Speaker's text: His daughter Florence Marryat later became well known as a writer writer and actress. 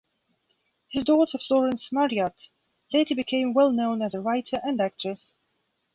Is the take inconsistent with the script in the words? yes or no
yes